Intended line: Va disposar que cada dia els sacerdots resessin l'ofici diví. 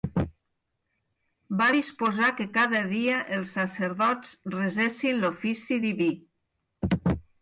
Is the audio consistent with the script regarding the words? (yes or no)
yes